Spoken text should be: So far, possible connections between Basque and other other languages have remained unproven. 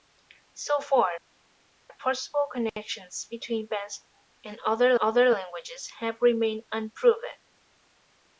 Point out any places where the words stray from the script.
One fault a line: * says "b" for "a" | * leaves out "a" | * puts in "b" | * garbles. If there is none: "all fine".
all fine